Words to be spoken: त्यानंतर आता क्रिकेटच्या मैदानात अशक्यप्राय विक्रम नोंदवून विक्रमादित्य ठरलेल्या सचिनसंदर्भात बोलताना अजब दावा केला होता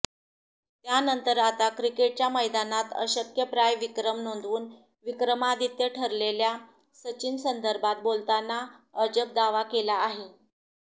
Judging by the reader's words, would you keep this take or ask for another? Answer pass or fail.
fail